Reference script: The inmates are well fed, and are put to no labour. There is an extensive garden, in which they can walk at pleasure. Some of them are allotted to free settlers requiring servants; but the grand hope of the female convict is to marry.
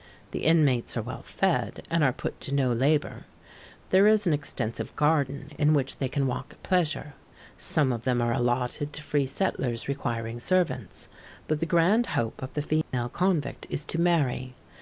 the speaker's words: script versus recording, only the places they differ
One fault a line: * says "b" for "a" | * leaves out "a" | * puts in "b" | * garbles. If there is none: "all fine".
all fine